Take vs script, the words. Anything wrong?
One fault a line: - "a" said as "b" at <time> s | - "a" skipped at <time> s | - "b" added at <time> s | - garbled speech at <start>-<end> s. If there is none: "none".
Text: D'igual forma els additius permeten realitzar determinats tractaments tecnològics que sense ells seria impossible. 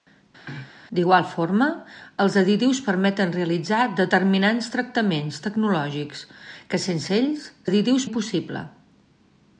- "seria" said as "additius" at 7.7 s